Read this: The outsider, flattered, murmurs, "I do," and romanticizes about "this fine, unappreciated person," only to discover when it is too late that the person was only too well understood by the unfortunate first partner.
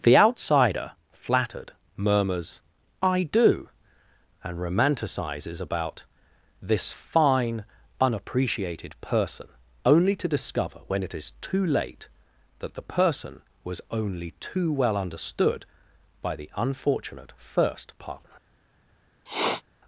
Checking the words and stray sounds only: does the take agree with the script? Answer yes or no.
no